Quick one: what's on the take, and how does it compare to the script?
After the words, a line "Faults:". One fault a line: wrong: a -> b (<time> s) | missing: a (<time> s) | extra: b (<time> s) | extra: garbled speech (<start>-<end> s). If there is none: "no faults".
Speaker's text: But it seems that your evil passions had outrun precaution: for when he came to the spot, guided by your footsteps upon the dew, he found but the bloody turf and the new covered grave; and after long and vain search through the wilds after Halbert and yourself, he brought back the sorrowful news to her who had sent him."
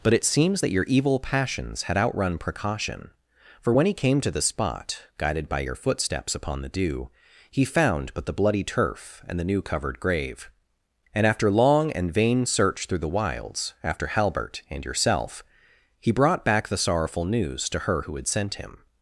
But it seems that your evil passions had outrun precaution: for when he came to the spot, guided by your footsteps upon the dew, he found but the bloody turf and the new covered grave; and after long and vain search through the wilds after Halbert and yourself, he brought back the sorrowful news to her who had sent him."
Faults:
no faults